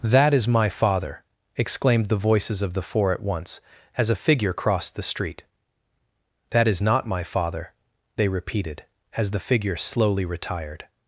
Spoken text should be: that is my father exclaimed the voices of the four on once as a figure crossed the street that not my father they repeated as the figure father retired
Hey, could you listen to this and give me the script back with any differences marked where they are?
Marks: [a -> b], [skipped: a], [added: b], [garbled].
that is my father exclaimed the voices of the four [on -> at] once as a figure crossed the street that [added: is] not my father they repeated as the figure [father -> slowly] retired